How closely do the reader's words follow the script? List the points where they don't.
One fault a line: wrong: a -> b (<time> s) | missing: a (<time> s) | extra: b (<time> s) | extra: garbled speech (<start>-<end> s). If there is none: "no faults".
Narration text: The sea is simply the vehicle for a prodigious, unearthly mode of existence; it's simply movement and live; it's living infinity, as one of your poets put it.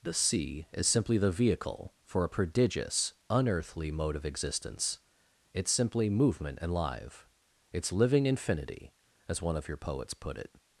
no faults